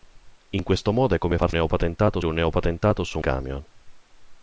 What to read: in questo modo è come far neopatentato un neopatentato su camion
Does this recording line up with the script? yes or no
yes